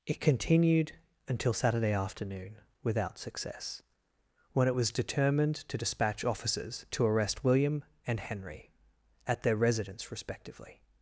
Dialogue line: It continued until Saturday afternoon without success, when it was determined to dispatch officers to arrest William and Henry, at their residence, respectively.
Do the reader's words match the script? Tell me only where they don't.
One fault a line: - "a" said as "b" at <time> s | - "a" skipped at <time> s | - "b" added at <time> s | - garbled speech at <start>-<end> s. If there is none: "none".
none